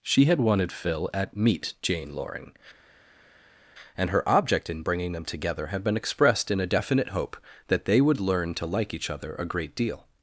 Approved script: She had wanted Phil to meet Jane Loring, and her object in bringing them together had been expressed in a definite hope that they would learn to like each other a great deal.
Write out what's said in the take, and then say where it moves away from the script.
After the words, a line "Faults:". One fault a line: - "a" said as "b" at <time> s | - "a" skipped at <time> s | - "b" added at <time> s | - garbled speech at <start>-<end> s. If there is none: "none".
She had wanted Phil at meet Jane Loring, and her object in bringing them together had been expressed in a definite hope that they would learn to like each other a great deal.
Faults:
- "to" said as "at" at 1.1 s